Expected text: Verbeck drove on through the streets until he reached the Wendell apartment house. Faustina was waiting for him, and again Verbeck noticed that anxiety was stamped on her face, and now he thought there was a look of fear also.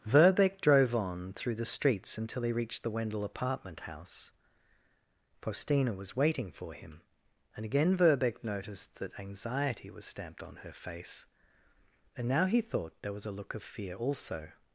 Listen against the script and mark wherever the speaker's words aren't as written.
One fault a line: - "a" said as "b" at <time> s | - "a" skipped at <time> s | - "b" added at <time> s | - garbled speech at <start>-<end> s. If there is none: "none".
none